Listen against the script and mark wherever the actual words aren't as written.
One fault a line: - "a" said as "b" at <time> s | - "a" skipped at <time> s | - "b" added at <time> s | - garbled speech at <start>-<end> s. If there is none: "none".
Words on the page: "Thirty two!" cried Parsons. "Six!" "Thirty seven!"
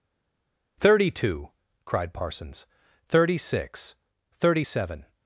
- "Thirty" added at 3.1 s